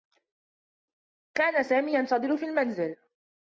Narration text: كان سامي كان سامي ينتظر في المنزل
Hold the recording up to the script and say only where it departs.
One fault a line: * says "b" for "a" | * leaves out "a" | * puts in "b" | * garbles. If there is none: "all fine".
* leaves out "كان سامي"